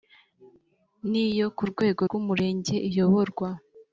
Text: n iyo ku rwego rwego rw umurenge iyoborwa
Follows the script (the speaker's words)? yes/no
no